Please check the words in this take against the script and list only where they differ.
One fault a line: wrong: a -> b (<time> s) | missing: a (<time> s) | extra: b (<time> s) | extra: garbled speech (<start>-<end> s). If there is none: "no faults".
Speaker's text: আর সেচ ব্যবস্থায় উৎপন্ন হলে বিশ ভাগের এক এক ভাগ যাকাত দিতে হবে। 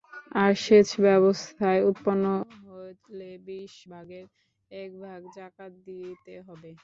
missing: এক (4.9 s)